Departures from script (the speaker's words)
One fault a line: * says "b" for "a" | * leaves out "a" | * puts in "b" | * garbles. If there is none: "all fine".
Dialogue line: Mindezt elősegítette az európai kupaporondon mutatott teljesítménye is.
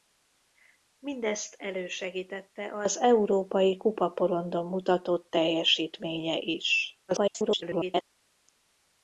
* garbles